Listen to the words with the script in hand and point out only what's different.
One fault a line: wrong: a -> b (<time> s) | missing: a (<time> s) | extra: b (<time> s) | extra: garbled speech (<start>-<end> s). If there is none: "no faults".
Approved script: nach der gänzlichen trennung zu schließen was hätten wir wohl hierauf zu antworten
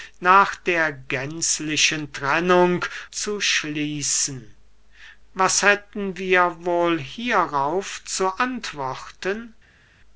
no faults